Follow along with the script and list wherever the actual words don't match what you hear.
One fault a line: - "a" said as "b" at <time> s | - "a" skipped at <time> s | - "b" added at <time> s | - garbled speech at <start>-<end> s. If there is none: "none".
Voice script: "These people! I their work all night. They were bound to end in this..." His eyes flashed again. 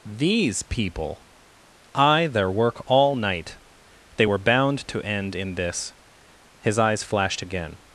none